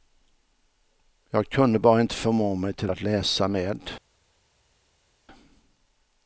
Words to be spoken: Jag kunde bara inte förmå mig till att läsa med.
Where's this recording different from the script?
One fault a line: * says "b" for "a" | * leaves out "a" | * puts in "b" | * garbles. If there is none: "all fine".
all fine